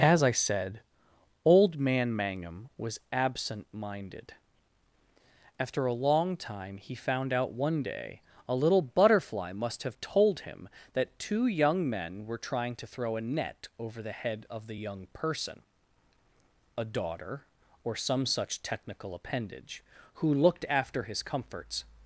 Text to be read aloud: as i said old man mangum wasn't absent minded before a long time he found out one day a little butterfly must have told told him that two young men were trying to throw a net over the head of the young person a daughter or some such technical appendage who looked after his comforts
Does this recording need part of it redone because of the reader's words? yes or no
yes